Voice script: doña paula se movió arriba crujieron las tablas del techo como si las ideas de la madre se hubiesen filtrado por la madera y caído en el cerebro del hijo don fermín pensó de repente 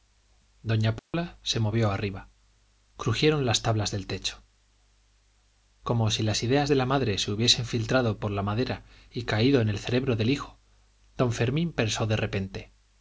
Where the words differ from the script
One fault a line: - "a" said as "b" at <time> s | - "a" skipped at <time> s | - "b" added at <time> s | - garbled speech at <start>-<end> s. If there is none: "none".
none